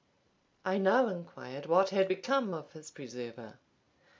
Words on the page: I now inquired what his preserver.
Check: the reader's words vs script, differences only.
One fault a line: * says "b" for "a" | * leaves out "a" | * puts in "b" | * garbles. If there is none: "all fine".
* puts in "had become of"